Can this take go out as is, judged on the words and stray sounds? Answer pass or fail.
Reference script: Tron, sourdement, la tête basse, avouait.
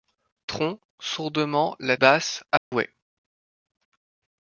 fail